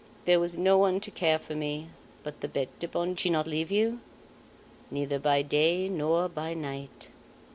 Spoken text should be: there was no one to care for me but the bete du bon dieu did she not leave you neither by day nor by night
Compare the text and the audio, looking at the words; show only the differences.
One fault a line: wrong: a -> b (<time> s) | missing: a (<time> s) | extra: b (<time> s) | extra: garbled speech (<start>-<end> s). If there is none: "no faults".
missing: dieu did (3.1 s)